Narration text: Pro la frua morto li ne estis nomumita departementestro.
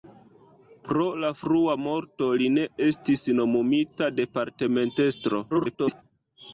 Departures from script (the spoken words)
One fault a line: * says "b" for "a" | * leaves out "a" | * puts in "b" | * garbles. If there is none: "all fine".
* garbles